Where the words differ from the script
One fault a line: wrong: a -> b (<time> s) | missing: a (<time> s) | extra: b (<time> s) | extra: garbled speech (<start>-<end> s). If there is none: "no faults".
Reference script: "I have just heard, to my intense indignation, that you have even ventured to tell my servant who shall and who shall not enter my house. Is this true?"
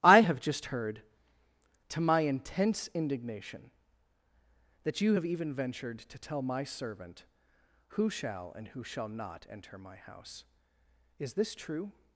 no faults